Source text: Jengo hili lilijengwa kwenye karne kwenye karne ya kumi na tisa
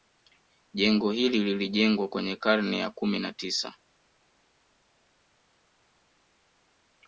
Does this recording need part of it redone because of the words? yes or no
yes